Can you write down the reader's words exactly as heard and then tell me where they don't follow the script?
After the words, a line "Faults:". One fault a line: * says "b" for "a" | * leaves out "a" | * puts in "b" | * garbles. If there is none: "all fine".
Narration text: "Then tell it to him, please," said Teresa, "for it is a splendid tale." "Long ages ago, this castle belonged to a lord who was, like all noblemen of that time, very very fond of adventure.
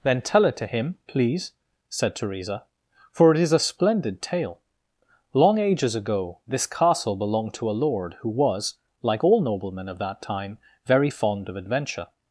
"Then tell it to him, please," said Teresa, "for it is a splendid tale." "Long ages ago, this castle belonged to a lord who was, like all noblemen of that time, very fond of adventure.
Faults:
* leaves out "very"